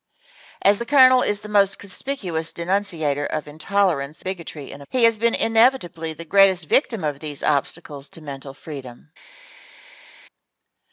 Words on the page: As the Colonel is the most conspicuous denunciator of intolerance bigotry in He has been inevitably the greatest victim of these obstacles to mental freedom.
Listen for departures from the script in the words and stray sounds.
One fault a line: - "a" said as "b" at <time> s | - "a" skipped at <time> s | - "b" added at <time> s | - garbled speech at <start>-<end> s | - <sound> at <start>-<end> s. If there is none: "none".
none